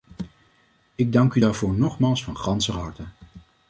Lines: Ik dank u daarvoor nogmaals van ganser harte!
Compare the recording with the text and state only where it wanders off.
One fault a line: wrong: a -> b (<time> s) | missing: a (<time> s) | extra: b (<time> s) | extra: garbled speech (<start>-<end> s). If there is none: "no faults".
no faults